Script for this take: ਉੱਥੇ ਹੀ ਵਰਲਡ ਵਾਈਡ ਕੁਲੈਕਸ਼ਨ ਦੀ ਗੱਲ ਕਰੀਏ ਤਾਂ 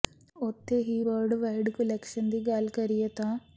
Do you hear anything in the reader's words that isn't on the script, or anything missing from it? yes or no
no